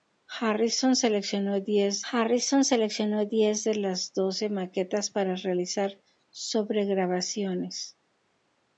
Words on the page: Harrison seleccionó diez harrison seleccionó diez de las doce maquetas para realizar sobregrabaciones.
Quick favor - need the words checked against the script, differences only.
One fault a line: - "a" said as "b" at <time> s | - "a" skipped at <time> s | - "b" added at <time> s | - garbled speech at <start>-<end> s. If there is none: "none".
none